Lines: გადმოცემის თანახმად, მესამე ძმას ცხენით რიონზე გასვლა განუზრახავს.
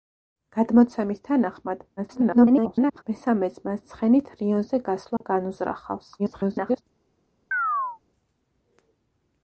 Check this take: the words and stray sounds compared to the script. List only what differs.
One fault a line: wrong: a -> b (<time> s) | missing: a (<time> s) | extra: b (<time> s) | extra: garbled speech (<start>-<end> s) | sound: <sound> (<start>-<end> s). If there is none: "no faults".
extra: garbled speech (2.0-3.0 s)
sound: dropout (5.2-5.2 s)
extra: garbled speech (6.2-6.8 s)
sound: chirp (7.5-8.0 s)